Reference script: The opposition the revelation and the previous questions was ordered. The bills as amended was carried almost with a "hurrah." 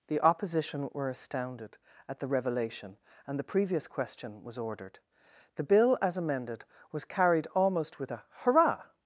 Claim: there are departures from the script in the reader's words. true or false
true